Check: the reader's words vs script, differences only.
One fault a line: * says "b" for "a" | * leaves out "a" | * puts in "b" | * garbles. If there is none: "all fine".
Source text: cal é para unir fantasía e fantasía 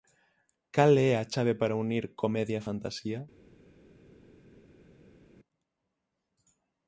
* puts in "a chave"
* says "comedia" for "fantasía"